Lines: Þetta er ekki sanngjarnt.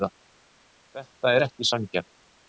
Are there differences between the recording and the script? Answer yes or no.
no